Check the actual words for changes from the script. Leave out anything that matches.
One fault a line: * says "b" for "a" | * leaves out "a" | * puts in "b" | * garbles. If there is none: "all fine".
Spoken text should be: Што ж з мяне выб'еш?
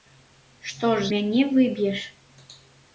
* leaves out "з"